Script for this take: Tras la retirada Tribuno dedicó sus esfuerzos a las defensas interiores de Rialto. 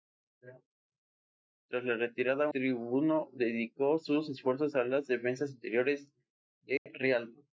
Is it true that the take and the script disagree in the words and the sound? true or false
true